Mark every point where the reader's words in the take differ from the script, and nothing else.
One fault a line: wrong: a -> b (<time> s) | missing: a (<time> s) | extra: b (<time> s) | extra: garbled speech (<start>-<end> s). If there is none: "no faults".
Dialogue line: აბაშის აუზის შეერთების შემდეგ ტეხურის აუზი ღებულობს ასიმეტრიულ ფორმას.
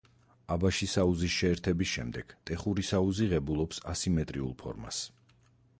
no faults